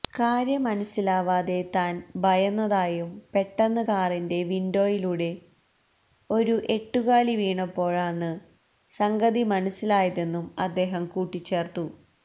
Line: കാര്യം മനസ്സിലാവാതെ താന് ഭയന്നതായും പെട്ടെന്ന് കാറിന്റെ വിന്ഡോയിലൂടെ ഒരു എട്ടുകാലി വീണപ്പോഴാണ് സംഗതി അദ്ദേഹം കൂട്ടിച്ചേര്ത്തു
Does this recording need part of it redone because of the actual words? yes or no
yes